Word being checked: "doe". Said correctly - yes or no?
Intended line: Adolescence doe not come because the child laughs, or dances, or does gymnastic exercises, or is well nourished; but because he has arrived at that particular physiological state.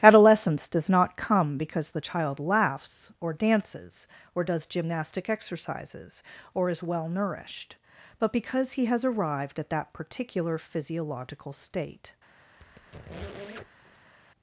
no